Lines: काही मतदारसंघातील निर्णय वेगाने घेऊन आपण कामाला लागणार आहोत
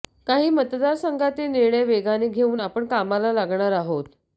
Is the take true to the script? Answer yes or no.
yes